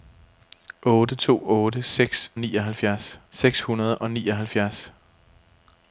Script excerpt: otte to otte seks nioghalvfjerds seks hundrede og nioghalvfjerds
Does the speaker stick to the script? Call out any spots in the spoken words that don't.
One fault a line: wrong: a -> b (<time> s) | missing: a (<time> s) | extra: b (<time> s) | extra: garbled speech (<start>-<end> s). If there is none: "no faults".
no faults